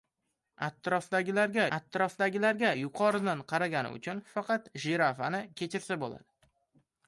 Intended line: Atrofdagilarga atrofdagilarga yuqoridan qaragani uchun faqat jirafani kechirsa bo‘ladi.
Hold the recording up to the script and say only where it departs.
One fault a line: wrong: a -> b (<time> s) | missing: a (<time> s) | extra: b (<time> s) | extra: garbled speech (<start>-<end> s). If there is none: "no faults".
no faults